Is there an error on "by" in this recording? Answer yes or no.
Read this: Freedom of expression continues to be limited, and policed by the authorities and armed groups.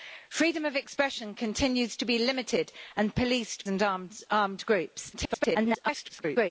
yes